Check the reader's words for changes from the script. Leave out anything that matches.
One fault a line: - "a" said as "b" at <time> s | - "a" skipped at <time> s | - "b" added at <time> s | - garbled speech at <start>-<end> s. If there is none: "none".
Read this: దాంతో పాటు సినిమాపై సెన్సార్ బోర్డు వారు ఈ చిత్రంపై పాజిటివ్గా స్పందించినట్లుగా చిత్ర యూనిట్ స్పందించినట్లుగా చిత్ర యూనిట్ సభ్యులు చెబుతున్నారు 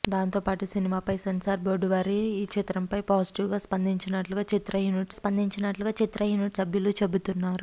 none